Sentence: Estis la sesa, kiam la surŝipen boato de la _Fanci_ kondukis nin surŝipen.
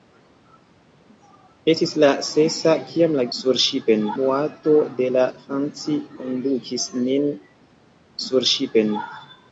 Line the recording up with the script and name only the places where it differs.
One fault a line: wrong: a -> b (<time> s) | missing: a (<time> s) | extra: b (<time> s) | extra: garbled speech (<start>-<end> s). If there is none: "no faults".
no faults